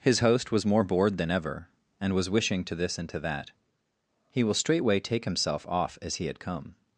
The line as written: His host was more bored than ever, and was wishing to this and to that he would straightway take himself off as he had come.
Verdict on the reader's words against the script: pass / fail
fail